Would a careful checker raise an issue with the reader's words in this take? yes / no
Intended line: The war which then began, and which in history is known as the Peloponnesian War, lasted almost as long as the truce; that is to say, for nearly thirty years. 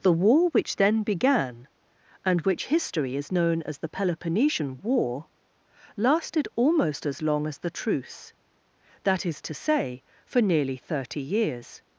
yes